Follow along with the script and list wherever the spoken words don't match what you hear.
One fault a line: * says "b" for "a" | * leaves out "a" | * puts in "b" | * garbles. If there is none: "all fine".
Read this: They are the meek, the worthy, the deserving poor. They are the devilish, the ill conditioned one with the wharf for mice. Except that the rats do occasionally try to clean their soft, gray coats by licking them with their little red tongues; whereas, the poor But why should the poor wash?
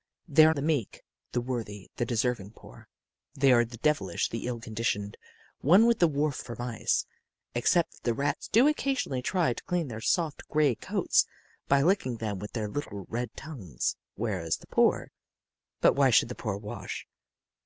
all fine